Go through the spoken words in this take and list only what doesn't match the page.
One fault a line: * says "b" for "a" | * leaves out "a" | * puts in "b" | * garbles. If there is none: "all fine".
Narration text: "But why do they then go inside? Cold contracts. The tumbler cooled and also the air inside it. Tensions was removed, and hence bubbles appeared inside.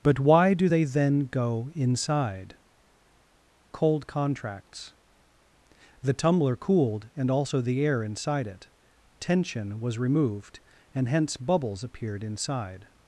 * says "Tension" for "Tensions"